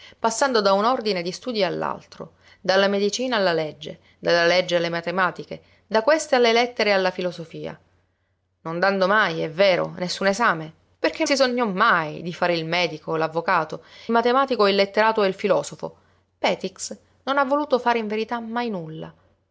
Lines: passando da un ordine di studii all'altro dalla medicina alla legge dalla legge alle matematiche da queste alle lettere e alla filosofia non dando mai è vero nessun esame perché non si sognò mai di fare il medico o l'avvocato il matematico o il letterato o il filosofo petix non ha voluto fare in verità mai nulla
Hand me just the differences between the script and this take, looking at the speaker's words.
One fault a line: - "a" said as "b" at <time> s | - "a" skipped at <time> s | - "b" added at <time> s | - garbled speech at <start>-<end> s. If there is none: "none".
- "non" skipped at 11.2 s
- "il" skipped at 13.8 s